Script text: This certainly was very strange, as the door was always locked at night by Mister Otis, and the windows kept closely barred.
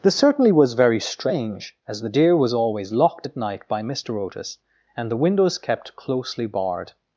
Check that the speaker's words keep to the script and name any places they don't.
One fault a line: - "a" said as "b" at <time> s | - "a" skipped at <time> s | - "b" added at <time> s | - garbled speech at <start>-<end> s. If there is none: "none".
- "door" said as "deer" at 2.1 s